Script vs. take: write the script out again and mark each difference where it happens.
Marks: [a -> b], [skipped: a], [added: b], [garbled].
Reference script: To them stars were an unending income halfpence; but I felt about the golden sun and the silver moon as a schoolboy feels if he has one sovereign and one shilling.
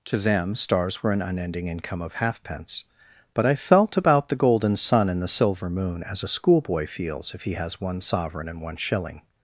To them stars were an unending income [added: of] halfpence; but I felt about the golden sun and the silver moon as a schoolboy feels if he has one sovereign and one shilling.